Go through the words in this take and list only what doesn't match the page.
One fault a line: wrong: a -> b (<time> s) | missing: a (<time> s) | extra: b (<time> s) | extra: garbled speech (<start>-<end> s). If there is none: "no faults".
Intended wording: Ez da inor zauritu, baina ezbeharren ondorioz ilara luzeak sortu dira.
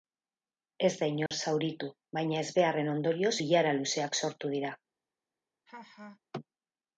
no faults